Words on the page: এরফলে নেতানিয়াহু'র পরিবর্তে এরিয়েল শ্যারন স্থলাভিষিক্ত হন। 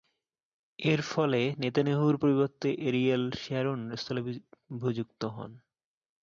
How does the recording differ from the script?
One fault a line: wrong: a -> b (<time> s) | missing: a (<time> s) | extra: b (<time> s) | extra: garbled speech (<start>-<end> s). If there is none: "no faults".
no faults